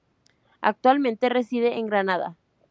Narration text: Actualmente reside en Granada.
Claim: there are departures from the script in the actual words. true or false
false